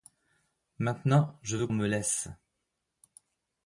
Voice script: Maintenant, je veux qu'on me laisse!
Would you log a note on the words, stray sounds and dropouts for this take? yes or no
yes